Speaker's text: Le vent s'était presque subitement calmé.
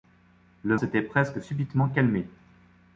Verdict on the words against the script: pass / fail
fail